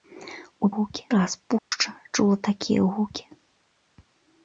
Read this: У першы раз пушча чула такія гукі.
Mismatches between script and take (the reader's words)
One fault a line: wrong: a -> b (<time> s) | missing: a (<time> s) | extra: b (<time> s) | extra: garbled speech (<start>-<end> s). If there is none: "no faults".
wrong: першы -> гукі (0.8 s)